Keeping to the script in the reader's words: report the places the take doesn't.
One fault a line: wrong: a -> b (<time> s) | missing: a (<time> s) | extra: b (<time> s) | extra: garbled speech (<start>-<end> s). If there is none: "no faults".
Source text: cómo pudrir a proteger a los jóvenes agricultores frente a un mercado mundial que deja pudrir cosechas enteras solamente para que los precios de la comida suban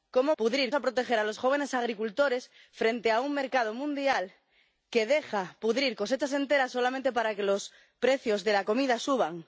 no faults